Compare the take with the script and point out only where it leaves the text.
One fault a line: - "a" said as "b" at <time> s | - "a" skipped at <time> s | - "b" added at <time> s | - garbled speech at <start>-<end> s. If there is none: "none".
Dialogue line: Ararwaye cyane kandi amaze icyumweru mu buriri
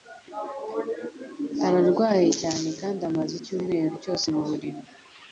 - "cyose" added at 4.0 s